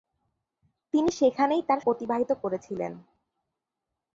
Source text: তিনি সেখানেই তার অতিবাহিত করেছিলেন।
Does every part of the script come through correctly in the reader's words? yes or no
yes